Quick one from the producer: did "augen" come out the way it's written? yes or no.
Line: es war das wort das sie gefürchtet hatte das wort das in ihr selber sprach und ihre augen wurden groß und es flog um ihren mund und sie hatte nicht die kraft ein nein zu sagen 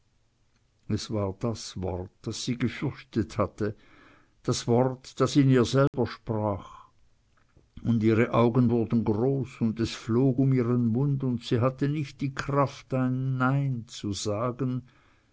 yes